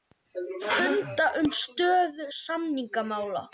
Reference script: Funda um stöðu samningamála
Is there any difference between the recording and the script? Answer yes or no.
no